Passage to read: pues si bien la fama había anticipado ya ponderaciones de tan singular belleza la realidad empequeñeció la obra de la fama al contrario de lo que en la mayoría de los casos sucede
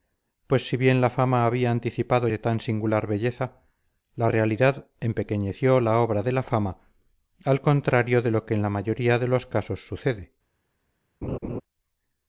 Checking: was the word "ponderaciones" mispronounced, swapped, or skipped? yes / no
yes